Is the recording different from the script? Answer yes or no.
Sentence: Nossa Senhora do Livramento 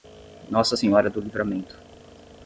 no